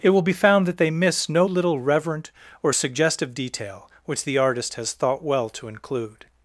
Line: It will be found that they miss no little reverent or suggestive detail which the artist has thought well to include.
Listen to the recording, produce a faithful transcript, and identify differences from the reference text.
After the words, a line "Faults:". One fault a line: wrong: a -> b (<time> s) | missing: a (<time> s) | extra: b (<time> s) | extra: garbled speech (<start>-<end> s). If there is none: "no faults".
It will be found that they miss no little reverent or suggestive detail which the artist has thought well to include.
Faults:
no faults